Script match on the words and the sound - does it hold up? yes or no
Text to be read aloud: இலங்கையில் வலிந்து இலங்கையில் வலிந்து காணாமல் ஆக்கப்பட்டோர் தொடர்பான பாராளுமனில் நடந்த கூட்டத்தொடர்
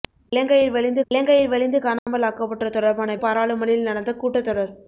no